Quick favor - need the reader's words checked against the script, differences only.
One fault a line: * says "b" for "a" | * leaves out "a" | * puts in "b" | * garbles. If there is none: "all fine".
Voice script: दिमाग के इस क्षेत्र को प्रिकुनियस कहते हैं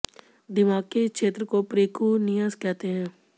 all fine